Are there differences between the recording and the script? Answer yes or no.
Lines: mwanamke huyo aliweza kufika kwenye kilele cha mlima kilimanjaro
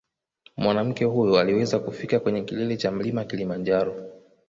no